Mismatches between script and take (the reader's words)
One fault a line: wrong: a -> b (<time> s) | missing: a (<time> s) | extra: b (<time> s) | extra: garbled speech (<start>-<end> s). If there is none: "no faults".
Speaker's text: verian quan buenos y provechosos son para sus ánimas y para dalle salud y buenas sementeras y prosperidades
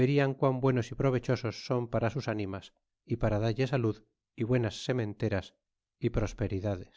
no faults